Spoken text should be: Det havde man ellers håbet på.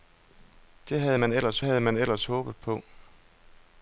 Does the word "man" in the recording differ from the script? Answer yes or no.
no